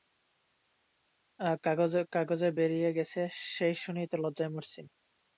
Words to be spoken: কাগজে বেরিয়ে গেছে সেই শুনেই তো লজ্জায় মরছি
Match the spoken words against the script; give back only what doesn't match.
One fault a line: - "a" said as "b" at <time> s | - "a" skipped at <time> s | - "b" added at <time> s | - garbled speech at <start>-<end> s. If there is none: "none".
none